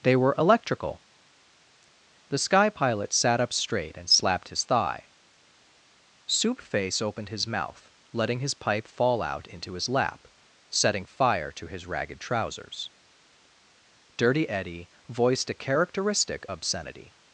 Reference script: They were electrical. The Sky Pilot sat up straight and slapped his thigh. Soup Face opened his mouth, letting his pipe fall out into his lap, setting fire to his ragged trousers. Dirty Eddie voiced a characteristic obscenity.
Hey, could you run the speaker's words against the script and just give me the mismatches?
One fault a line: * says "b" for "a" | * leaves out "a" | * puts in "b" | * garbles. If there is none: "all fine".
all fine